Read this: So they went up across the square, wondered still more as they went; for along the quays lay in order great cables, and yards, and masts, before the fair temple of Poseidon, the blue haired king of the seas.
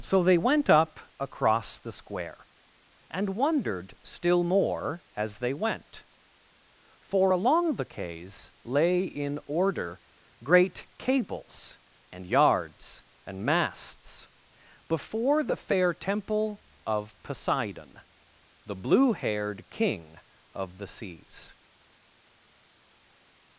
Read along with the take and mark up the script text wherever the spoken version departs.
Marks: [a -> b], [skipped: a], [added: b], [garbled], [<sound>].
So they went up across the square, [added: and] wondered still more as they went; for along the quays lay in order great cables, and yards, and masts, before the fair temple of Poseidon, the blue haired king of the seas.